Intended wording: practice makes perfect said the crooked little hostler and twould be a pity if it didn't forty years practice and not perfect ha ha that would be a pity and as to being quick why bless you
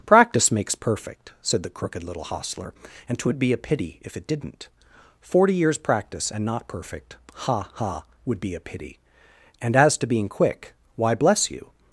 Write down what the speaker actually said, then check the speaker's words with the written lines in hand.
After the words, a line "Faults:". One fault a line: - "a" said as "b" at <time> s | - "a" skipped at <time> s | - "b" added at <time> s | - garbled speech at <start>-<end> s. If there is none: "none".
practice makes perfect said the crooked little hostler and twould be a pity if it didn't forty years practice and not perfect ha ha would be a pity and as to being quick why bless you
Faults:
- "that" skipped at 8.0 s